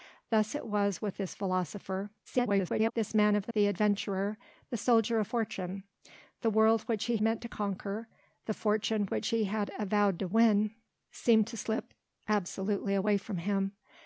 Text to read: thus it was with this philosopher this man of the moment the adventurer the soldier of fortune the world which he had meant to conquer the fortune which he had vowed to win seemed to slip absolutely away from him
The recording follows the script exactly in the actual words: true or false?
false